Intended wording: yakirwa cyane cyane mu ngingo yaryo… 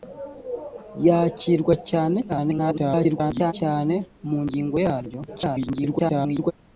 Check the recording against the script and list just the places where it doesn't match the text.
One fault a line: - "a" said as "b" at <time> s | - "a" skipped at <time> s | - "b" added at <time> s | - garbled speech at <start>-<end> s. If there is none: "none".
- garbled speech at 2.3-3.5 s
- garbled speech at 5.3-6.5 s